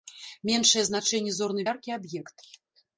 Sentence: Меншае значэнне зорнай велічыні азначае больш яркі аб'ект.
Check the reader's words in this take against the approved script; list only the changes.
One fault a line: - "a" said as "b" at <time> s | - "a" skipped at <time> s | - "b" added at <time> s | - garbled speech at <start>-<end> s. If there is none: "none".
- "велічыні азначае больш" skipped at 1.7 s